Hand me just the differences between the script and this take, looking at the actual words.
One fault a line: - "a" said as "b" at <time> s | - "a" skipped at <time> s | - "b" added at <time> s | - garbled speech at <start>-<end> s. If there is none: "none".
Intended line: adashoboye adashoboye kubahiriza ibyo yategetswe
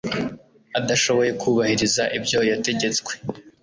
- "adashoboye" skipped at 1.3 s